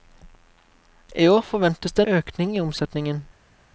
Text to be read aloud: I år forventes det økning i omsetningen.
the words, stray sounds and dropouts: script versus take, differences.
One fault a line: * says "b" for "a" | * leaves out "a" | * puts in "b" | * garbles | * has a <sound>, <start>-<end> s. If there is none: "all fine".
all fine